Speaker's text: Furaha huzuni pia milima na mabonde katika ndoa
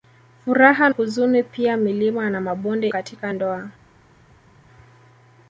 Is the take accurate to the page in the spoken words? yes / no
yes